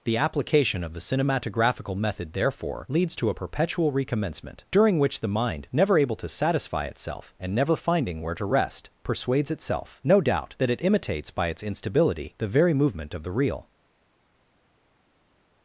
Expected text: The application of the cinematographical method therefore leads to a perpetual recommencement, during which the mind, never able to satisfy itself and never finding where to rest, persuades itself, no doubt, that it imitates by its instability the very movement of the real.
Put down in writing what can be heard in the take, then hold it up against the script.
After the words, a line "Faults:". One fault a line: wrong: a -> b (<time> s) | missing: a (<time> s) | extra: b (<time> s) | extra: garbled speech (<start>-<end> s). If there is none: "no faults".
The application of the cinematographical method therefore leads to a perpetual recommencement, during which the mind, never able to satisfy itself and never finding where to rest, persuades itself, no doubt, that it imitates by its instability the very movement of the real.
Faults:
no faults